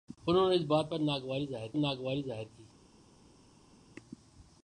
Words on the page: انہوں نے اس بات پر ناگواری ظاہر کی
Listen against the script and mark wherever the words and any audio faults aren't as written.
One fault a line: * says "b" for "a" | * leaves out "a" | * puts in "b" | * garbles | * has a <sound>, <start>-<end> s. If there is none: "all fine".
* puts in "ناگواری ظاہر"